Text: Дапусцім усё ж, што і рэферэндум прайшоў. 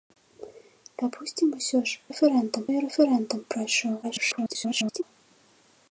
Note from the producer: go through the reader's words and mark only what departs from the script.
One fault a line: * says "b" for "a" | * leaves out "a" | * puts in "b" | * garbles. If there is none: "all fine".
* says "рэферэндум" for "што"
* garbles